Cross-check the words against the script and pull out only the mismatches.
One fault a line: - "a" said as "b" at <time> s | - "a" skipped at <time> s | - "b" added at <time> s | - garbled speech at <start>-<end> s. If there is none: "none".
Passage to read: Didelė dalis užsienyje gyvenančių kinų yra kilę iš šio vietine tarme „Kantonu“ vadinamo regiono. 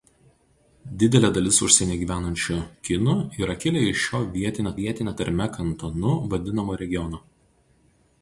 - "vietine" added at 4.8 s